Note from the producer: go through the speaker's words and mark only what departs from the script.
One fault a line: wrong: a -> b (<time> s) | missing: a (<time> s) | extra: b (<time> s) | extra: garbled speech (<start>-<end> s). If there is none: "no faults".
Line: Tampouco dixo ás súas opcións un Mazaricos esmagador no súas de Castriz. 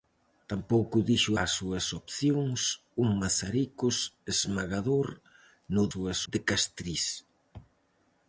no faults